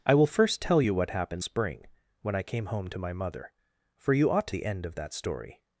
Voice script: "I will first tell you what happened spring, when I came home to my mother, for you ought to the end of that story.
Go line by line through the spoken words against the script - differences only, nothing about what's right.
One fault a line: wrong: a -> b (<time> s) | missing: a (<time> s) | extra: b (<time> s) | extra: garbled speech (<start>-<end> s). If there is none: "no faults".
no faults